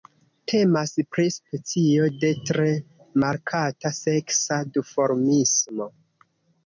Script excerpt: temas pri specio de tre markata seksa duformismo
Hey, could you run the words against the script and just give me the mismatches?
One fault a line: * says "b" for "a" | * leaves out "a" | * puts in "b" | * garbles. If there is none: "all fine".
all fine